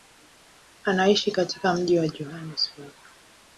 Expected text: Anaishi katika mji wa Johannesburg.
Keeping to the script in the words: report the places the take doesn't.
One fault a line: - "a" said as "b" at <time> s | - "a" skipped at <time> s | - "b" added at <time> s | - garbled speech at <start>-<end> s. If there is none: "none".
none